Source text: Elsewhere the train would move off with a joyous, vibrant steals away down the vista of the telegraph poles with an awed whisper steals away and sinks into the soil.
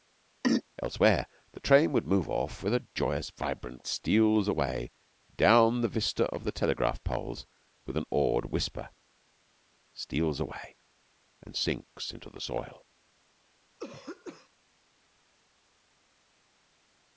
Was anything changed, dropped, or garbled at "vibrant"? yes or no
no